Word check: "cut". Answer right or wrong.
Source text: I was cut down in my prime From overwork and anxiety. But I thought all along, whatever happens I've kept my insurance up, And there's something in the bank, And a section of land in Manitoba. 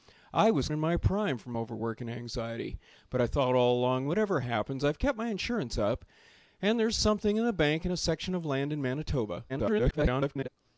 wrong